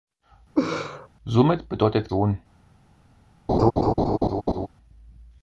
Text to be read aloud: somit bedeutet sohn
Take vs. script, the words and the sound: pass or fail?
fail